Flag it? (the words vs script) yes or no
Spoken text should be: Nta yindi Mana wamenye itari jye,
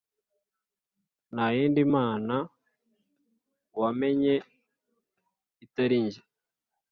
no